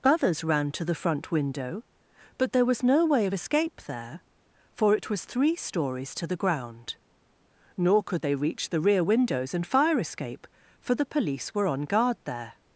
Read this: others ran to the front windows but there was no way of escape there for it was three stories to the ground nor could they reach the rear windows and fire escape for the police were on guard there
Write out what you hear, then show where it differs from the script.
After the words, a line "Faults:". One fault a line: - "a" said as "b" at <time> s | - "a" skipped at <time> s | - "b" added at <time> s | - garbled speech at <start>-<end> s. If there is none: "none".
others ran to the front window but there was no way of escape there for it was three stories to the ground nor could they reach the rear windows and fire escape for the police were on guard there
Faults:
- "windows" said as "window" at 1.3 s